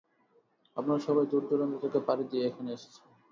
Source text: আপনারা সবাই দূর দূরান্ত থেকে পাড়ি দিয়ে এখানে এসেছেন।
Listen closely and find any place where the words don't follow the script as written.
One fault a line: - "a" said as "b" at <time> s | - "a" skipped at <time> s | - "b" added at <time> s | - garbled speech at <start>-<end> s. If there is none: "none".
none